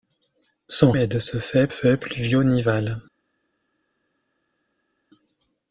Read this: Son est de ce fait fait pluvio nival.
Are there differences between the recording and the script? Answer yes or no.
no